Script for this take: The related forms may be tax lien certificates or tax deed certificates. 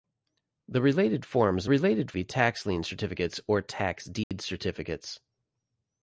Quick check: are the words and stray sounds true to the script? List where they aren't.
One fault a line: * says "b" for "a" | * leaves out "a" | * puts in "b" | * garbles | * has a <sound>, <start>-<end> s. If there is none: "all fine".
* says "related" for "may"
* has a dropout, 4.2-4.3 s